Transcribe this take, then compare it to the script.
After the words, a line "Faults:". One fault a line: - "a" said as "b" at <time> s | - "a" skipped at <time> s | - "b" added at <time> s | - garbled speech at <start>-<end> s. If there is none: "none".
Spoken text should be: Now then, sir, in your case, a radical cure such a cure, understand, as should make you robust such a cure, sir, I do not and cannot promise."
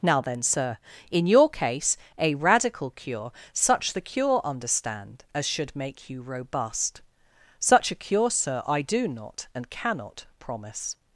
Now then, sir, in your case, a radical cure such the cure, understand, as should make you robust such a cure, sir, I do not and cannot promise."
Faults:
- "a" said as "the" at 3.9 s